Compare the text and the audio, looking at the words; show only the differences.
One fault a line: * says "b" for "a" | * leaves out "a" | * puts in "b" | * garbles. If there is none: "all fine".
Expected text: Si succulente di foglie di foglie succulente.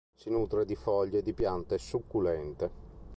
* says "nutre" for "succulente"
* says "piante" for "foglie"